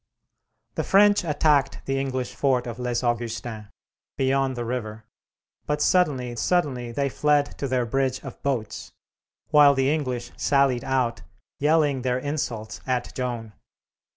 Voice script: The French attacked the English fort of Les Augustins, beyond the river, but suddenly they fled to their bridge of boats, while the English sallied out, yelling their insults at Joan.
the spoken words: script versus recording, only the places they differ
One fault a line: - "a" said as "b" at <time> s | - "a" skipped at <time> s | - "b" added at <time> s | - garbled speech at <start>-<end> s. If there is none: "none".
- "suddenly" added at 6.4 s